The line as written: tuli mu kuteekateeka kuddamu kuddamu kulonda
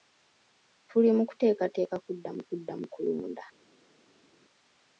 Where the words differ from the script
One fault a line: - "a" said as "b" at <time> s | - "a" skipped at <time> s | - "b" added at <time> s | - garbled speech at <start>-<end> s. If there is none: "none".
none